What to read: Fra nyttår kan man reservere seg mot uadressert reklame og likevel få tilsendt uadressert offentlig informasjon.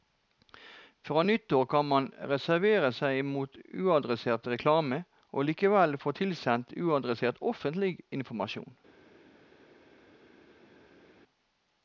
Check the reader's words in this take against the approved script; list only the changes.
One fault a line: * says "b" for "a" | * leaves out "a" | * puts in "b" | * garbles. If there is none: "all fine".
all fine